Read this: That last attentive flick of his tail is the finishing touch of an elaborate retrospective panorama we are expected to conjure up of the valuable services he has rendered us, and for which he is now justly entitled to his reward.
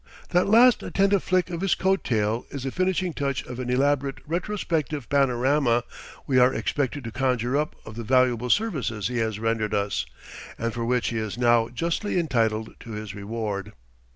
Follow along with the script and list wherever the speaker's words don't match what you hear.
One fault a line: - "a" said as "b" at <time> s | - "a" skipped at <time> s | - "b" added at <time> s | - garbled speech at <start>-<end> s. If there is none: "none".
- "coat" added at 1.8 s